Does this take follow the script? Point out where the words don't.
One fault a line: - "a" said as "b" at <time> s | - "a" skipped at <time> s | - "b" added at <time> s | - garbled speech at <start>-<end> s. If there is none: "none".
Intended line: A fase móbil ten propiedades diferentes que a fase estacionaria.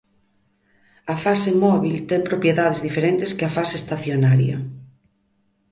none